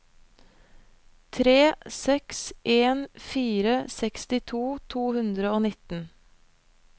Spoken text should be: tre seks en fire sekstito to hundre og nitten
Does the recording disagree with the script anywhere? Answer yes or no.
no